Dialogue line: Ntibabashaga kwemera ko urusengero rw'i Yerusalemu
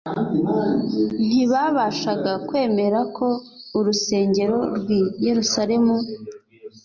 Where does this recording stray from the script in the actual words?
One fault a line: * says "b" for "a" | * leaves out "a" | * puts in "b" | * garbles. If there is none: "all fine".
all fine